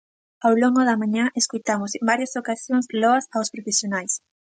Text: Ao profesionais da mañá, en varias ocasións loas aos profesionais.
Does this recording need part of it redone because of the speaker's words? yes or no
yes